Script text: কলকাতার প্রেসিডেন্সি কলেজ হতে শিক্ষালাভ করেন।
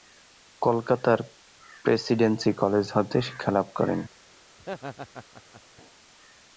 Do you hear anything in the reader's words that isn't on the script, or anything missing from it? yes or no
no